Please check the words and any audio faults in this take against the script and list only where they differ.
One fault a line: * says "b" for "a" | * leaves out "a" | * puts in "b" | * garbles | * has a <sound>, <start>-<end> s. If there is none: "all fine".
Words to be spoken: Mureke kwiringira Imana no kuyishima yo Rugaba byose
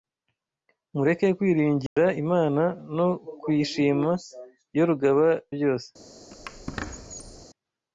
* has a dropout, 1.9-2.0 s
* has a squeak, 6.3-7.5 s